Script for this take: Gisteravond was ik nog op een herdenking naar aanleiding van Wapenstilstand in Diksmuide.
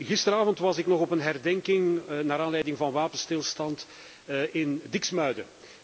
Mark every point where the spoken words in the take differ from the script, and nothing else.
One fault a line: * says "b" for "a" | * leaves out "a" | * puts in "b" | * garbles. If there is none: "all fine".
all fine